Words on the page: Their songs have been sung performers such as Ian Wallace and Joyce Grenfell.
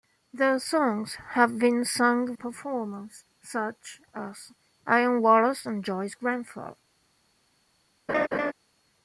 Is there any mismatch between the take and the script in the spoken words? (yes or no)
no